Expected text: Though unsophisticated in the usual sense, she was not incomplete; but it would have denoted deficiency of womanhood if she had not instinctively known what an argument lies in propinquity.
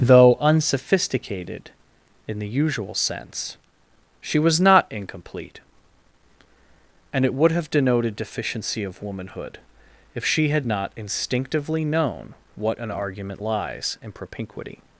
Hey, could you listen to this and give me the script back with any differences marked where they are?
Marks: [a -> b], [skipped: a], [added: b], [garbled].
Though unsophisticated in the usual sense, she was not incomplete; [but -> and] it would have denoted deficiency of womanhood if she had not instinctively known what an argument lies in propinquity.